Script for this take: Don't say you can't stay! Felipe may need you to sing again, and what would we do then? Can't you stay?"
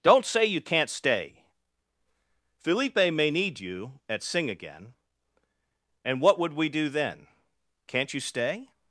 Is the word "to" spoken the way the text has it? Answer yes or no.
no